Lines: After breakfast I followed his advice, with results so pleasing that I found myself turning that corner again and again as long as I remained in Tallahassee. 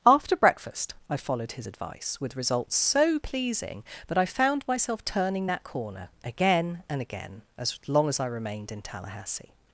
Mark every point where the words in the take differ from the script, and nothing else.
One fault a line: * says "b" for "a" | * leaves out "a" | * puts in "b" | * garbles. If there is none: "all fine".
all fine